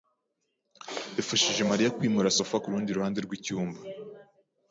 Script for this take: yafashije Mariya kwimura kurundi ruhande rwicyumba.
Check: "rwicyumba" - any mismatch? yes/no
no